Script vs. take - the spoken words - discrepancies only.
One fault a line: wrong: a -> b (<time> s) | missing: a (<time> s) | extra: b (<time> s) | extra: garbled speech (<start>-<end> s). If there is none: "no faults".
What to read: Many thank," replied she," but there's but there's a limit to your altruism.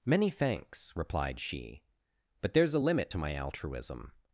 wrong: thank -> thanks (0.3 s)
missing: but there's (2.7 s)
wrong: your -> my (3.2 s)